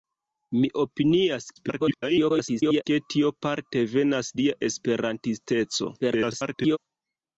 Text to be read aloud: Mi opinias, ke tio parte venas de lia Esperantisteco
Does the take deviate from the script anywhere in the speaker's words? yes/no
yes